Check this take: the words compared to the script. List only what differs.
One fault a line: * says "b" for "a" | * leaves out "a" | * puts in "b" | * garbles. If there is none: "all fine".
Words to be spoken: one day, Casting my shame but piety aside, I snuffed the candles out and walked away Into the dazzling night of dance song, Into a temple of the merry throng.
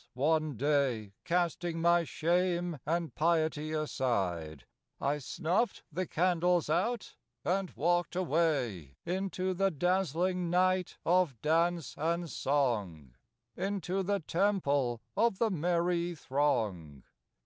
* says "and" for "but"
* puts in "and"
* says "the" for "a"